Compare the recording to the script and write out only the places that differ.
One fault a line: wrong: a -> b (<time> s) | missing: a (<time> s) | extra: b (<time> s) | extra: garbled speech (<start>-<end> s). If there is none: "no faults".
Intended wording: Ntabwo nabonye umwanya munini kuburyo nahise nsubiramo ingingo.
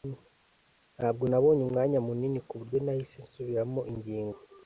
no faults